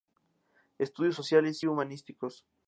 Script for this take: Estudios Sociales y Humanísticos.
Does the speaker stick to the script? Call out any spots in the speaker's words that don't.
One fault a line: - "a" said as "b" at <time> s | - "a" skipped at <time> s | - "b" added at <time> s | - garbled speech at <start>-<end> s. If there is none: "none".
- "y" skipped at 1.6 s